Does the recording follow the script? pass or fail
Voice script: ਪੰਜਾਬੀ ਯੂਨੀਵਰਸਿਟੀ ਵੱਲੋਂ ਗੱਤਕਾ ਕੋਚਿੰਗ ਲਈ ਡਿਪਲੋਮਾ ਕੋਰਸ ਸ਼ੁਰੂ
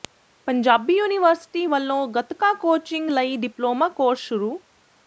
pass